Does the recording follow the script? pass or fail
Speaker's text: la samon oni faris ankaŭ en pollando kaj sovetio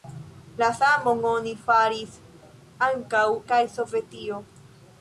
fail